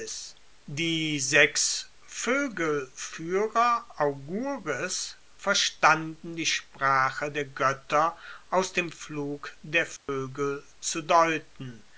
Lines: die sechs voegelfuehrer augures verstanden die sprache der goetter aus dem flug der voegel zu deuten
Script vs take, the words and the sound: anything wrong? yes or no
yes